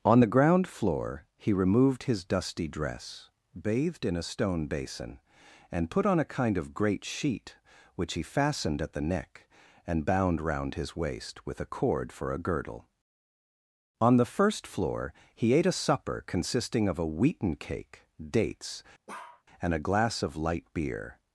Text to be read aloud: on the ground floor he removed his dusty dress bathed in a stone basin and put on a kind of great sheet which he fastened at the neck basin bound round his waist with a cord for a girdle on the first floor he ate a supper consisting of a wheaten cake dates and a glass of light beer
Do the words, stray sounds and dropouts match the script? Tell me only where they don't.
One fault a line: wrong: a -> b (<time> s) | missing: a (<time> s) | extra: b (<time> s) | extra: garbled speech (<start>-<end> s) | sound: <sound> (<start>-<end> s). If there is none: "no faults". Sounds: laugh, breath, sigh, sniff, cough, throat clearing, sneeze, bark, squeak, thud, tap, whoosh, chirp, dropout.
wrong: basin -> and (9.9 s)
sound: bark (19.1-19.4 s)